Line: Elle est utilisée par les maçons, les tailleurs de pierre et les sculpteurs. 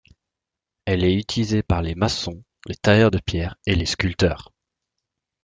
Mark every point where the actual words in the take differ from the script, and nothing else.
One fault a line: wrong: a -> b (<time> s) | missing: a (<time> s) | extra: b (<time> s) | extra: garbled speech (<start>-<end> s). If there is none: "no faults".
no faults